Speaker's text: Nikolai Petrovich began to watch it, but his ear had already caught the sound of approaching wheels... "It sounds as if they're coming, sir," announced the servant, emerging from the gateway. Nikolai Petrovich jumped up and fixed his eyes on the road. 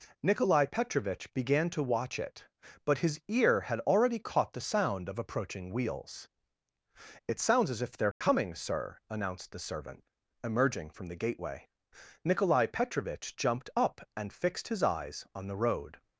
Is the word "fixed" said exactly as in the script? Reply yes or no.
yes